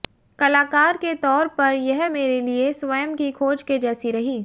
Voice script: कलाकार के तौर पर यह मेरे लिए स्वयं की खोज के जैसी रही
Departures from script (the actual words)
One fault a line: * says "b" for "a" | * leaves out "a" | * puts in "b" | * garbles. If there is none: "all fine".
all fine